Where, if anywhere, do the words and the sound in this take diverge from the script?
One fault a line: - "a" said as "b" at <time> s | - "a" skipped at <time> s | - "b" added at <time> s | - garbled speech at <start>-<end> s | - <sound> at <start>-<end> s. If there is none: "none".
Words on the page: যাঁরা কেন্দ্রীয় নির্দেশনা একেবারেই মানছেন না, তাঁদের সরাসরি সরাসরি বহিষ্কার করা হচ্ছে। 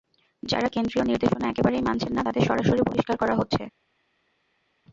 - "সরাসরি" skipped at 2.8 s